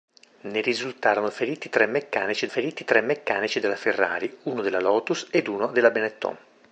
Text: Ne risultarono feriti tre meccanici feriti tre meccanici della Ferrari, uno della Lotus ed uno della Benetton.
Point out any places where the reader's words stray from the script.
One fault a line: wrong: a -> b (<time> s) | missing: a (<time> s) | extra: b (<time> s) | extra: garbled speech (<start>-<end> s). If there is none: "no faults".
no faults